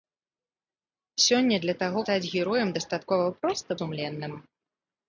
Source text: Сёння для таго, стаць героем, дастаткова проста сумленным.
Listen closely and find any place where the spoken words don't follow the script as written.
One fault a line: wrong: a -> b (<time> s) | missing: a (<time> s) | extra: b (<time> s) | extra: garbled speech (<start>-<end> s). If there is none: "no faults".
no faults